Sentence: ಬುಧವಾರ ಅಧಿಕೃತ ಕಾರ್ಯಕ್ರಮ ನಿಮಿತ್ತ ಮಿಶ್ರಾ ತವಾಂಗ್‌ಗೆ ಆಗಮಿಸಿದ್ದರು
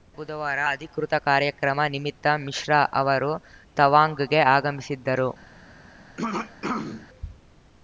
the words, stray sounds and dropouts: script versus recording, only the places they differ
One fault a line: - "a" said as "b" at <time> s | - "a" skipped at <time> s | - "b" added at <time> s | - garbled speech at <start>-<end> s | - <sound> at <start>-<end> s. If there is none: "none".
- "ಅವರು" added at 2.9 s
- throat clearing at 6.2-7.1 s